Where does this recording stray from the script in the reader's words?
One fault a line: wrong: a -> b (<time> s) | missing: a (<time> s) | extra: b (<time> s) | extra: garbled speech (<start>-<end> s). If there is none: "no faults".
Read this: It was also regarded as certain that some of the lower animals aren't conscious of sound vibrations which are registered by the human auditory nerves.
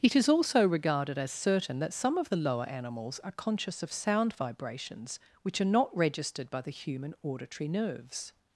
wrong: was -> is (0.1 s)
wrong: aren't -> are (3.2 s)
extra: not (5.7 s)